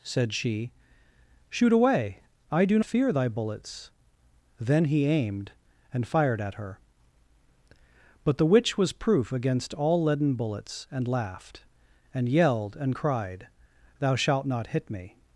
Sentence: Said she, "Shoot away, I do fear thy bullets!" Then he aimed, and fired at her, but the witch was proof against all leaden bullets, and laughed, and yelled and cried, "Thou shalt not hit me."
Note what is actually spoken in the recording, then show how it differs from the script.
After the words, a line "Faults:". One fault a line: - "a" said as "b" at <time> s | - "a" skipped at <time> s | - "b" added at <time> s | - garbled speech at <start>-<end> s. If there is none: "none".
Said she, "Shoot away, I do fear thy bullets!" Then he aimed, and fired at her, but the witch was proof against all leaden bullets, and laughed, and yelled and cried, "Thou shalt not hit me."
Faults:
none